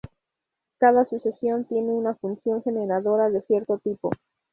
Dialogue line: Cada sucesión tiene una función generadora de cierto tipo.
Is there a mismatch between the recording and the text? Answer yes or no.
no